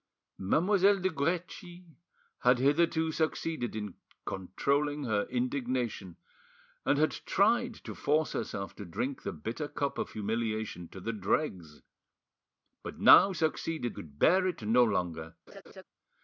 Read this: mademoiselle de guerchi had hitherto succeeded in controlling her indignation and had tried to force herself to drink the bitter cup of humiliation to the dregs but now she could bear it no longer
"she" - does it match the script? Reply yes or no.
no